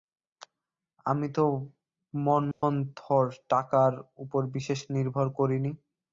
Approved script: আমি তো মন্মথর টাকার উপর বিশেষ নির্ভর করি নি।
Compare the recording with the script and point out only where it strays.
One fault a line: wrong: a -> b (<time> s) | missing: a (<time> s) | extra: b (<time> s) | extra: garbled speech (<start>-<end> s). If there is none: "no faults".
no faults